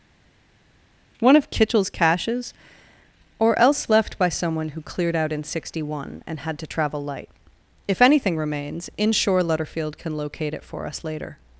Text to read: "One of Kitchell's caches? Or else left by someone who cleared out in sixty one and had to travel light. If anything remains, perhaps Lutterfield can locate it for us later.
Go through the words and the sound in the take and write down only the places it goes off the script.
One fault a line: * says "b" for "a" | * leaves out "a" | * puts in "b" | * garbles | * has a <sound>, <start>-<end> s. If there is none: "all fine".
* says "inshore" for "perhaps"